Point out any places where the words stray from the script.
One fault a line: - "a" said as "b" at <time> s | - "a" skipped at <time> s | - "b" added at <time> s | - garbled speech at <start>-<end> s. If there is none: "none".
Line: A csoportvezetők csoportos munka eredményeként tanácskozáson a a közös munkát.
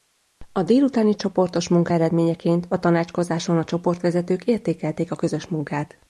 - "csoportvezetők" said as "délutáni" at 0.6 s
- "a" added at 2.7 s
- "csoportvezetők értékelték" added at 3.6 s